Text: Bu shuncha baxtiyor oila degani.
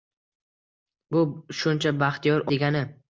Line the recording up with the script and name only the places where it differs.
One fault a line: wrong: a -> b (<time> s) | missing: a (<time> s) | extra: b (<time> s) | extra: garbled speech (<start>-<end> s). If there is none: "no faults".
missing: oila (2.5 s)